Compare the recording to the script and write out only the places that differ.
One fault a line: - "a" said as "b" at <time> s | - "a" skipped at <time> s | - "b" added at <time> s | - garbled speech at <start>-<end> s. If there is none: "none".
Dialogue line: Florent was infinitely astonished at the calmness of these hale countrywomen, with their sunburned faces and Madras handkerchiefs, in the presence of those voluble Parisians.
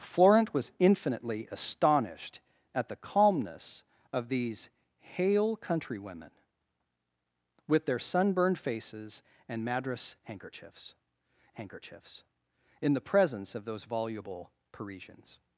- "handkerchiefs" added at 11.5 s